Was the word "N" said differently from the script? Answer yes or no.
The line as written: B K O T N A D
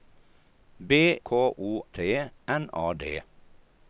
no